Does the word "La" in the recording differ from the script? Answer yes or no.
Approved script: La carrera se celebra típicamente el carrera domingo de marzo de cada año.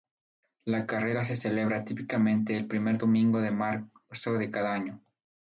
no